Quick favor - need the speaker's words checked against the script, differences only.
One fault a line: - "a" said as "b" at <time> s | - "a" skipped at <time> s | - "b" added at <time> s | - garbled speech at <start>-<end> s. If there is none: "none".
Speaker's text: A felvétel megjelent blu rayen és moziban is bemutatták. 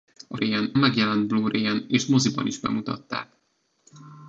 - "felvétel" said as "rayen" at 0.3 s